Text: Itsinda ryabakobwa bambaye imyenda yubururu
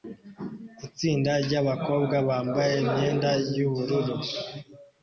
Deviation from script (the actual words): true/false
false